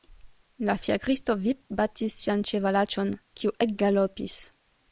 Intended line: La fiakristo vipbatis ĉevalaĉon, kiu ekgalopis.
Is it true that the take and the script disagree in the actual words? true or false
true